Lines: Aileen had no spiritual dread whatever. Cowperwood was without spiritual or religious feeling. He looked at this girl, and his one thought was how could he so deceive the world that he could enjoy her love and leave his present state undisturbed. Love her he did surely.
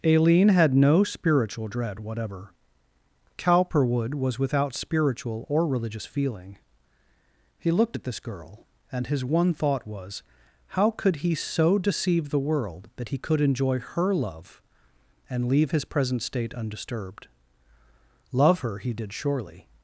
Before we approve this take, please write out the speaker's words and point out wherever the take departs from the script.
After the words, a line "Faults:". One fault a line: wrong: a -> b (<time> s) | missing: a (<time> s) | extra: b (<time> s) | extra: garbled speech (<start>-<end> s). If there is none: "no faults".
Aileen had no spiritual dread whatever. Cowperwood was without spiritual or religious feeling. He looked at this girl, and his one thought was how could he so deceive the world that he could enjoy her love and leave his present state undisturbed. Love her he did surely.
Faults:
no faults